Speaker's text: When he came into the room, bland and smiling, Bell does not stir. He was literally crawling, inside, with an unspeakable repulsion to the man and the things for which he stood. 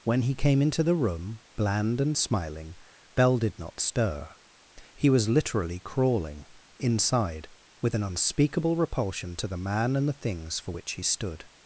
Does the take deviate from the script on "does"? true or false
true